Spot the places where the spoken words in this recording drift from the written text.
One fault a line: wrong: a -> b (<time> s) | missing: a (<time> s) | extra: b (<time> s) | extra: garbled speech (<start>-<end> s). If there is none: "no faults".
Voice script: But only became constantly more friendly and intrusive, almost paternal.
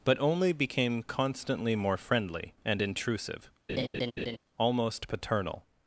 no faults